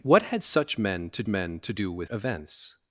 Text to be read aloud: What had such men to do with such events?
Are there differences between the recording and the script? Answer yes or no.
yes